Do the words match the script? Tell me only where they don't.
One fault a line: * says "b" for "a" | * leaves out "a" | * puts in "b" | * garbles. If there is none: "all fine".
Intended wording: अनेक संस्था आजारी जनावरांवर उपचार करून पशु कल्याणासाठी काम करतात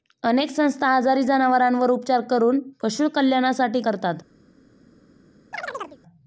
* leaves out "काम"